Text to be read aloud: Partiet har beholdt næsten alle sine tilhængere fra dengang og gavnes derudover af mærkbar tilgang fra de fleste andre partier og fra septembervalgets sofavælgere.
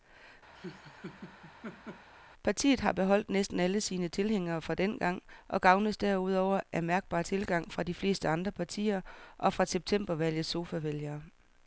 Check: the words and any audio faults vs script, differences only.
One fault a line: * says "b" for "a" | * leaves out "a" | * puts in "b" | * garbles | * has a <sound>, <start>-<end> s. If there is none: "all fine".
* has a laugh, 0.5-2.1 s